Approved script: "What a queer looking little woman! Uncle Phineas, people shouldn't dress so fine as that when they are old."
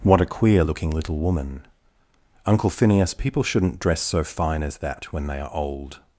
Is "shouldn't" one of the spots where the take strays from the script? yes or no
no